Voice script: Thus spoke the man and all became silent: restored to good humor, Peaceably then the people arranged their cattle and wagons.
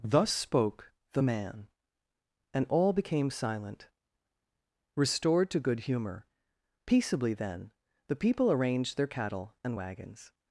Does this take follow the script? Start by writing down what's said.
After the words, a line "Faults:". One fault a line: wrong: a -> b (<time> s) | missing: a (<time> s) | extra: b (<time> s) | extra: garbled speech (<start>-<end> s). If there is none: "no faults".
Thus spoke the man and all became silent: restored to good humor, Peaceably then the people arranged their cattle and wagons.
Faults:
no faults